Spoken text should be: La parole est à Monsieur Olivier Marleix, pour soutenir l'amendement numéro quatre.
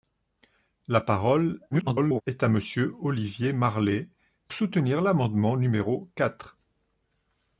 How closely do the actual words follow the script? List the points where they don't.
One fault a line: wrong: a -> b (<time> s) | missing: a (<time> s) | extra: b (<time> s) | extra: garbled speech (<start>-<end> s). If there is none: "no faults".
extra: garbled speech (1.7-2.2 s)
missing: pour (4.1 s)